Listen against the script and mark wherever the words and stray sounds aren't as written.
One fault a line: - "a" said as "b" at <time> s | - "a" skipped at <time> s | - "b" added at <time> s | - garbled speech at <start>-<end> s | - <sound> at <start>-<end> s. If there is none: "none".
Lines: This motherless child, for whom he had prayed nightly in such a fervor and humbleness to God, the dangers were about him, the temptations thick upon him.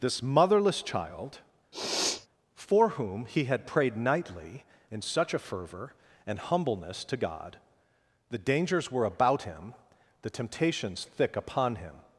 - sniff at 1.7-2.3 s